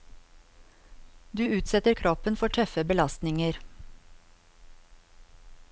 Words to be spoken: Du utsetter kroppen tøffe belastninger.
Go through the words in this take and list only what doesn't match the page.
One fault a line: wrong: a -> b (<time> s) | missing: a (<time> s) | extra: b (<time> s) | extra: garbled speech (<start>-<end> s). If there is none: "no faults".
extra: for (2.4 s)